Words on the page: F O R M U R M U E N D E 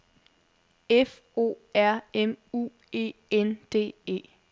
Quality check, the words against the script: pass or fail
fail